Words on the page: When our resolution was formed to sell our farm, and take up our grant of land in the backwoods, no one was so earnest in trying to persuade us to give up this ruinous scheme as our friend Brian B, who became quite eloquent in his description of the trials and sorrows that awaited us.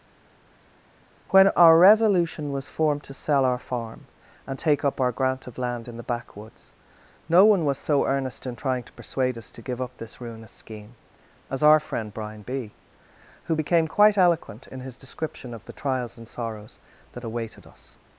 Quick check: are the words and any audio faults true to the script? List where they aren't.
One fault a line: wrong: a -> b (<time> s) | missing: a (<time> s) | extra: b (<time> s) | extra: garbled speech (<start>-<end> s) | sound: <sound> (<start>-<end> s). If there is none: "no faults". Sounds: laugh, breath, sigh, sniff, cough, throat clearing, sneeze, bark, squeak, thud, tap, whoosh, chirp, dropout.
no faults